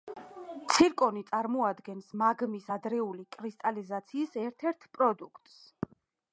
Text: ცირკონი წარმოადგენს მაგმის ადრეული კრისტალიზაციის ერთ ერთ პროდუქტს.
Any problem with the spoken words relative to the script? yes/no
no